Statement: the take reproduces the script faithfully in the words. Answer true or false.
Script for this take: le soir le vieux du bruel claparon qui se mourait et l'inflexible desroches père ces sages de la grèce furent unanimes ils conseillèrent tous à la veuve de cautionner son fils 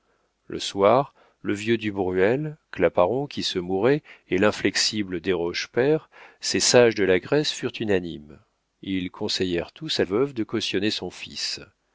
false